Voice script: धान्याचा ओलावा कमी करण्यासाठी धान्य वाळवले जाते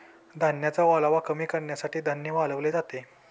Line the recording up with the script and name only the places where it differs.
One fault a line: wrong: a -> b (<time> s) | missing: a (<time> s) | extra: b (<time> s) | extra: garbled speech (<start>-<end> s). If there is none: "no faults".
no faults